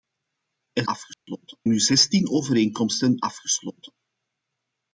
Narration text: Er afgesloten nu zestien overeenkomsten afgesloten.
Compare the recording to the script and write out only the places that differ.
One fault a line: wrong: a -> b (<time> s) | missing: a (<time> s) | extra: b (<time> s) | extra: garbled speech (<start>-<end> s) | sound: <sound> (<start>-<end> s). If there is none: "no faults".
sound: dropout (1.1-1.3 s)